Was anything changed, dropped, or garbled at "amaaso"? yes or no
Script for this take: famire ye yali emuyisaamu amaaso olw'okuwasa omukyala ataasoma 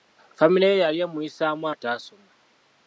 yes